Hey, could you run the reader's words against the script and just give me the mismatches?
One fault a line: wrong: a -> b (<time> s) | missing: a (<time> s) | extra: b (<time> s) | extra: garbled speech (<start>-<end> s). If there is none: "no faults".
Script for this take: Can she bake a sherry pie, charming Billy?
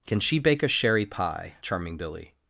no faults